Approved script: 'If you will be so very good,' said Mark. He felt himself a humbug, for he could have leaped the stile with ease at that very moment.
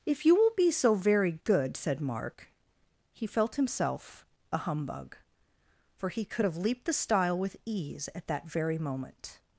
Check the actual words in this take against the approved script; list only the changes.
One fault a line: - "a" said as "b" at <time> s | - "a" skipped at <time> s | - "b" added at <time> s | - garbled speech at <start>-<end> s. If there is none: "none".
none